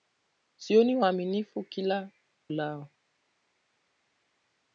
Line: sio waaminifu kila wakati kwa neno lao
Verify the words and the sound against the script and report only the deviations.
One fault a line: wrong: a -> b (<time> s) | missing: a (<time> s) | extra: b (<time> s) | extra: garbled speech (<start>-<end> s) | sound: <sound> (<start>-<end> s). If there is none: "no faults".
missing: wakati kwa neno (2.1 s)